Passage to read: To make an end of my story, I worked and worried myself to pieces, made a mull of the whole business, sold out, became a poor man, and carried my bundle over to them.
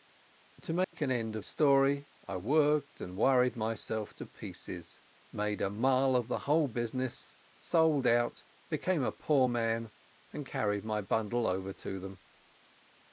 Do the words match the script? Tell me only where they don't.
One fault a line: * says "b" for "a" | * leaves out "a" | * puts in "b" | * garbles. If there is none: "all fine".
* leaves out "my"